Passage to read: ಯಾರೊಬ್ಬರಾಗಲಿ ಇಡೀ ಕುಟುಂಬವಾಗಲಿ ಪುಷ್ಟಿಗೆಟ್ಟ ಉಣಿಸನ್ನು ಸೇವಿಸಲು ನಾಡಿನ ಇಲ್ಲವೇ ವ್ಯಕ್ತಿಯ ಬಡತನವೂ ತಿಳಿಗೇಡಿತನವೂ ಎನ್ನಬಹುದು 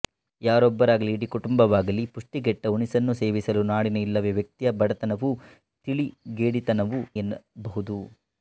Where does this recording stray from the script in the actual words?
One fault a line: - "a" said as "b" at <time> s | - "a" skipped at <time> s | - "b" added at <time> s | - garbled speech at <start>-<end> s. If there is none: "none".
none